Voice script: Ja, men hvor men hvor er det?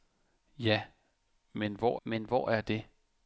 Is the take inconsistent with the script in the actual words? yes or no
no